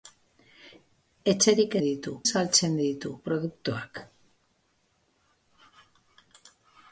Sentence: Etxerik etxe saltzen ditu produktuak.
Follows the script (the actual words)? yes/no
no